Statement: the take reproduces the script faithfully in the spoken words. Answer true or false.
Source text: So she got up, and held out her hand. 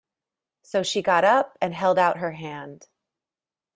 true